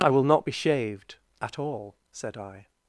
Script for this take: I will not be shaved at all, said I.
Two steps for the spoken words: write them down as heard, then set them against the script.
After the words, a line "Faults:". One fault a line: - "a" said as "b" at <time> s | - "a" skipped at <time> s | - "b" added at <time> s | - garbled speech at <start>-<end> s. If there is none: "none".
I will not be shaved at all, said I.
Faults:
none